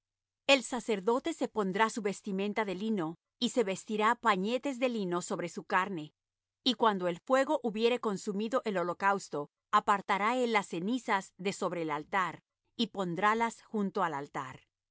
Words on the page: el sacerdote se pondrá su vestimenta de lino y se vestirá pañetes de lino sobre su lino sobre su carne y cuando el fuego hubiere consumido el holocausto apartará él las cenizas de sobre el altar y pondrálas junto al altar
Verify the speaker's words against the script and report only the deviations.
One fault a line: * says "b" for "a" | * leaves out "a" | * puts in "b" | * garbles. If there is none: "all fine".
* leaves out "lino sobre su"